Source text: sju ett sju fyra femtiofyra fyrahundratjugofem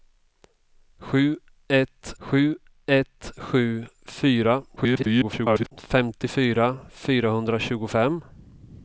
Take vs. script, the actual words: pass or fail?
fail